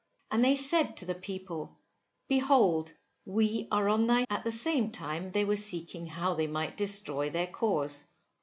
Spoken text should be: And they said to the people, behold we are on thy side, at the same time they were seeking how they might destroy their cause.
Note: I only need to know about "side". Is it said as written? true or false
false